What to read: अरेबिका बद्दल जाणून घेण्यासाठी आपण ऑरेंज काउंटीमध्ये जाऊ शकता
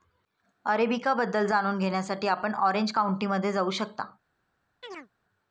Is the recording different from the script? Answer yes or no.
no